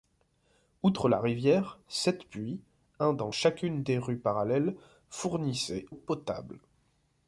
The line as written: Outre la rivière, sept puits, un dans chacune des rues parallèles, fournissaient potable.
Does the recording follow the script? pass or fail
pass